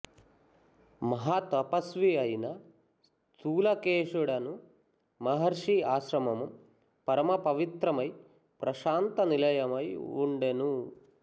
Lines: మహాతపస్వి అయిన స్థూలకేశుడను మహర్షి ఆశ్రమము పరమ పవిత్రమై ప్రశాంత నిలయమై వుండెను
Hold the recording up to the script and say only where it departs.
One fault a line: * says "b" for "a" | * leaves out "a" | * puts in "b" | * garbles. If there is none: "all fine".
all fine